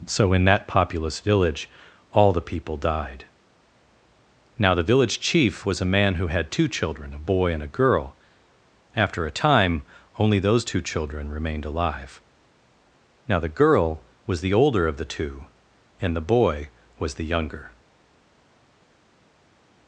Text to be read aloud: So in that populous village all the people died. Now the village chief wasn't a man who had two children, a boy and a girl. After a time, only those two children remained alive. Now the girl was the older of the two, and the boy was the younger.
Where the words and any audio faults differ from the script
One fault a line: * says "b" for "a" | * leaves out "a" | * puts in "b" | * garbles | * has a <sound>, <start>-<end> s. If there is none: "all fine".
* says "was" for "wasn't"